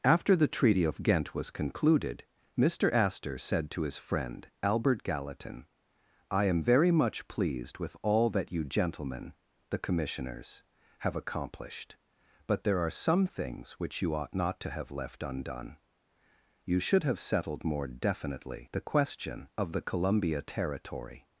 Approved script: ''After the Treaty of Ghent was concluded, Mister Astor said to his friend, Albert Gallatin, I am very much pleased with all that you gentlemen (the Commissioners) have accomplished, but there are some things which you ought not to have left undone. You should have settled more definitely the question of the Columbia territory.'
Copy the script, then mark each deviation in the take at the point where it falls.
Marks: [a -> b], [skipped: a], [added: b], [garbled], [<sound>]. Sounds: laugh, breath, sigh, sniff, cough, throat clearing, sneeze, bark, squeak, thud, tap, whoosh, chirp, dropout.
''After the Treaty of Ghent was concluded, Mister Astor said to his friend, Albert Gallatin, I am very much pleased with all that you gentlemen (the Commissioners) have accomplished, but there are some things which you ought not to have left undone. You should have settled more definitely the question of the Columbia territory.'